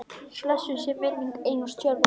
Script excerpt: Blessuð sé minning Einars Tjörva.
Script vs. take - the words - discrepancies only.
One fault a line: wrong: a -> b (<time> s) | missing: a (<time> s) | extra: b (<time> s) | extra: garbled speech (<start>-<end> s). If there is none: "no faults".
no faults